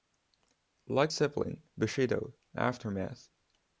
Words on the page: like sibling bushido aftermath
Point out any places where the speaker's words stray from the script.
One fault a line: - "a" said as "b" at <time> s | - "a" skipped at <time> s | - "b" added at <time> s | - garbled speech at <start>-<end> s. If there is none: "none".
none